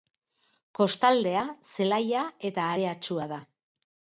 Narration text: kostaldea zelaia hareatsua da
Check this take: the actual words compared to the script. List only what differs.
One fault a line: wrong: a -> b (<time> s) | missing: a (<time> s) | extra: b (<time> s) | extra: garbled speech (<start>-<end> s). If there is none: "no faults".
extra: eta (2.5 s)